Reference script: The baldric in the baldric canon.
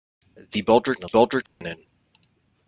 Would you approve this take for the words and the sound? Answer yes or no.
no